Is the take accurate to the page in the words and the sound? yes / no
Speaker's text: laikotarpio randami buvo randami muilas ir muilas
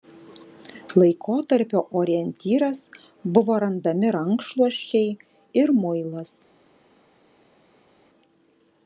no